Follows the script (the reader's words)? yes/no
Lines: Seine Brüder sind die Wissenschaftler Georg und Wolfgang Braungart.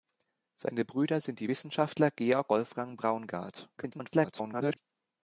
no